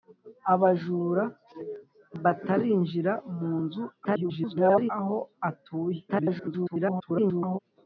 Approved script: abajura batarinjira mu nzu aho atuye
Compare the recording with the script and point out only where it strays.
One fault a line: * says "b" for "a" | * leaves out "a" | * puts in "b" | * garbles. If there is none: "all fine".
* garbles
* garbles